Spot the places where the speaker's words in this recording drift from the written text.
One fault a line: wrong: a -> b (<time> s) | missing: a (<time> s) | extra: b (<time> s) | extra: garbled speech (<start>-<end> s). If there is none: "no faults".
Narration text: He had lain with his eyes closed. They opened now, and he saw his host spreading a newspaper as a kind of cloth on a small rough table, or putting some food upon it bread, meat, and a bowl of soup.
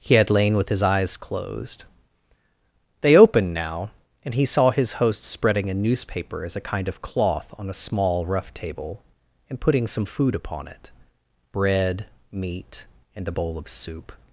wrong: or -> and (9.5 s)